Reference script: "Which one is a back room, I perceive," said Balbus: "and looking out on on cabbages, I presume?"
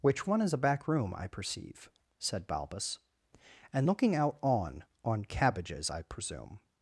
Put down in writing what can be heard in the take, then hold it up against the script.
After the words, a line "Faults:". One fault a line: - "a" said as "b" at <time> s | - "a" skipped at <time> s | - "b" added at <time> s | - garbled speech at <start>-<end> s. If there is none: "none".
"Which one is a back room, I perceive," said Balbus: "and looking out on on cabbages, I presume?"
Faults:
none